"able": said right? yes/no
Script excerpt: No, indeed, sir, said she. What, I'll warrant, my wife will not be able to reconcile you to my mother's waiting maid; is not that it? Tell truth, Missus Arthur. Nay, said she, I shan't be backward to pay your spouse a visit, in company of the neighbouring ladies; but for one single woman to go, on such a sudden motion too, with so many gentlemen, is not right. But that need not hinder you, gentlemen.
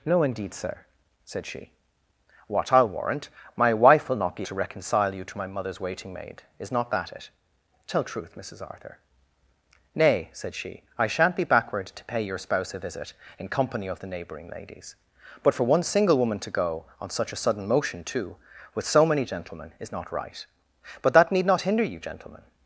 no